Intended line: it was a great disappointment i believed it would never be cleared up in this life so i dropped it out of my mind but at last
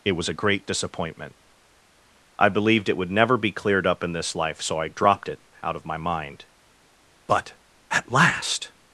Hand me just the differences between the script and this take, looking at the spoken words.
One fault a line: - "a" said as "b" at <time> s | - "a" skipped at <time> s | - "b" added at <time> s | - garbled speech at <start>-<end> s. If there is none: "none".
none